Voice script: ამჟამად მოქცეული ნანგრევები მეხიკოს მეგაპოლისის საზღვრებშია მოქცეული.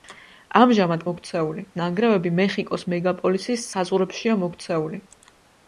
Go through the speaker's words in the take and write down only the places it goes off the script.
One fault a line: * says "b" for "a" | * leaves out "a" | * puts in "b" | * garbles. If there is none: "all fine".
all fine